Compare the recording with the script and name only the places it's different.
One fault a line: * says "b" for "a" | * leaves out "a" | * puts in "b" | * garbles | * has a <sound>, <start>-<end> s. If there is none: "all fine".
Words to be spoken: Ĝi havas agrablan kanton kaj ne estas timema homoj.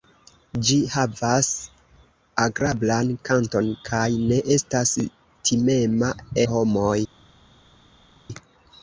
all fine